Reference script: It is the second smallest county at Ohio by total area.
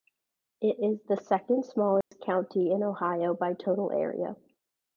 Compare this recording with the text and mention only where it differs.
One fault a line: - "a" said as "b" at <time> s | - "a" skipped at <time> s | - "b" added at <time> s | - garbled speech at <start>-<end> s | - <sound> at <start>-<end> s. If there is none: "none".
- dropout at 2.0-2.1 s
- "at" said as "in" at 2.7 s